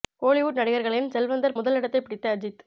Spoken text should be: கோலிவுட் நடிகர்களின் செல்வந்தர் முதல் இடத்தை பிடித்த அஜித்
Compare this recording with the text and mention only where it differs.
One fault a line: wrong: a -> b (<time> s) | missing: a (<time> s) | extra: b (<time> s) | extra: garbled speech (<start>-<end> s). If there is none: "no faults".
no faults